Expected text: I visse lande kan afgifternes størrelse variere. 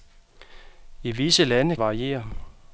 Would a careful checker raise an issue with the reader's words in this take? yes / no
yes